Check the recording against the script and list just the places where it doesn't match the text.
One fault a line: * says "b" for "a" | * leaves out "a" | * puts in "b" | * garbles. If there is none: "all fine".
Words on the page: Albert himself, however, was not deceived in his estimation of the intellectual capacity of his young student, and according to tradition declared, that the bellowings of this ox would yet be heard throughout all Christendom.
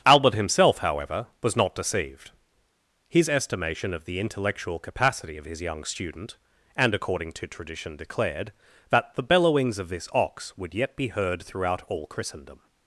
* leaves out "in"